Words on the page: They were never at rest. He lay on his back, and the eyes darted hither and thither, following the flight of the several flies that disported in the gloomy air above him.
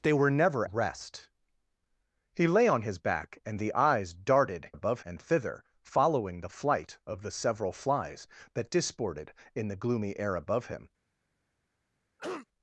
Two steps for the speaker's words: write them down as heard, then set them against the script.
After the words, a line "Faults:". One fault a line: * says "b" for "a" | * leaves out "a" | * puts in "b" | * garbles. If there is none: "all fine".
They were never rest. He lay on his back, and the eyes darted above and thither, following the flight of the several flies that disported in the gloomy air above him.
Faults:
* leaves out "at"
* says "above" for "hither"